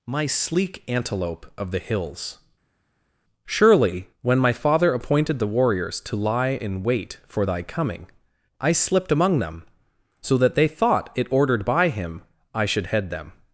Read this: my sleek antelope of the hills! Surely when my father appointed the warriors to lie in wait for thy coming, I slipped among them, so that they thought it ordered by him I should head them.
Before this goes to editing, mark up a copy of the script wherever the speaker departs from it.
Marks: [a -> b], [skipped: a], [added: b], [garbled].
my sleek antelope of the hills! Surely when my father appointed the warriors to lie in wait for thy coming, I slipped among them, so that they thought it ordered by him I should head them.